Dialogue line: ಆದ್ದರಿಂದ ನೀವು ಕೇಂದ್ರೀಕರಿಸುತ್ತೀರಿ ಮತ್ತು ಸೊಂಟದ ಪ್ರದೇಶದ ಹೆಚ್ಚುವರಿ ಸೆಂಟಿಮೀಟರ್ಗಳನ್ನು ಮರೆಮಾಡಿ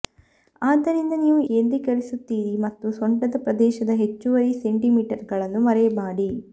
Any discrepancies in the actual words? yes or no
no